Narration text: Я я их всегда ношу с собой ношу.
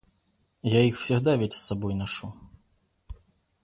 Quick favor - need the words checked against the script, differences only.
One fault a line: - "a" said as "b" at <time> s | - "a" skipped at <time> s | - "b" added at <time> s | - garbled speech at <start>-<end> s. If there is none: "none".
- "я" skipped at 0.8 s
- "ношу" said as "ведь" at 1.4 s